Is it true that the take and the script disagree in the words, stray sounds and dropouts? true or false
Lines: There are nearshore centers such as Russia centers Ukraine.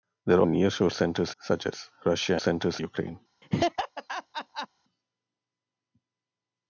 true